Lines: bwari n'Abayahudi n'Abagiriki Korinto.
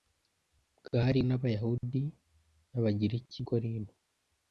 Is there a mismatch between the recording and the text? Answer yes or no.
no